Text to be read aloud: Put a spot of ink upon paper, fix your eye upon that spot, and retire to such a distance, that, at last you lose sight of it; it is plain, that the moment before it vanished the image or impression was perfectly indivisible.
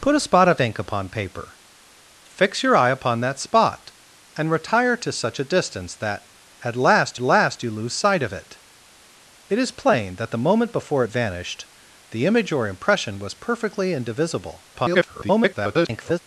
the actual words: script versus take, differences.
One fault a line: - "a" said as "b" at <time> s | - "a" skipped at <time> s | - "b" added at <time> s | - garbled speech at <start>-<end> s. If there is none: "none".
- "last" added at 7.2 s
- garbled speech at 14.7-16.2 s